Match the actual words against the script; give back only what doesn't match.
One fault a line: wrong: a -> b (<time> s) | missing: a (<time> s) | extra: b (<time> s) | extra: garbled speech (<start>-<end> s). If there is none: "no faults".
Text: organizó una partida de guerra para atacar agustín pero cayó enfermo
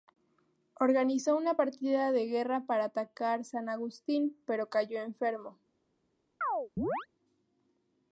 extra: san (3.4 s)